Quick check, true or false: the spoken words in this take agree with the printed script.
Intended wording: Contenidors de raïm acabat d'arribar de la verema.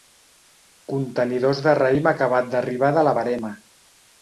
true